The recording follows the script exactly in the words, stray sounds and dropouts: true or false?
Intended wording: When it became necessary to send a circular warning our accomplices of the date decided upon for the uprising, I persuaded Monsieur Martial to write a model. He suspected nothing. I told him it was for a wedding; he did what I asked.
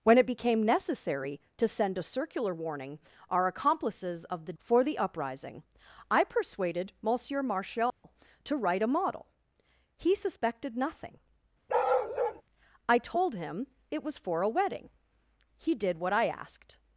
false